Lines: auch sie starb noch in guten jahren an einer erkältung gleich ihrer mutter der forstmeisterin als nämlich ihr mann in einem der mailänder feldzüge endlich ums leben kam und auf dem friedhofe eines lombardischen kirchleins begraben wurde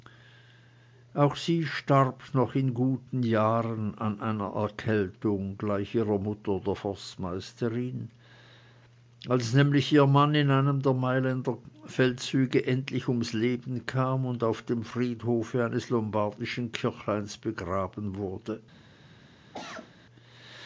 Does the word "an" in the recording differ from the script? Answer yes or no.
no